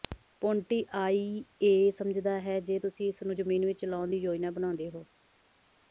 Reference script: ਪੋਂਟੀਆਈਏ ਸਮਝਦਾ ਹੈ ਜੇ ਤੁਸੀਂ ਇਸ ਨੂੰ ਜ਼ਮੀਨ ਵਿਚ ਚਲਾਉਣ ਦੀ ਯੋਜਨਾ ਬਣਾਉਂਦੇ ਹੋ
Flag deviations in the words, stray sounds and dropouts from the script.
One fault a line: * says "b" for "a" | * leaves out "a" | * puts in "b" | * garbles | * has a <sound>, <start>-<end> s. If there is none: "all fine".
all fine